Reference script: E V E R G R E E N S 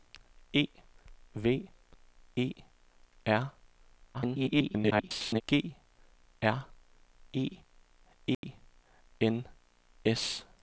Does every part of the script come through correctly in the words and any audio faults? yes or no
no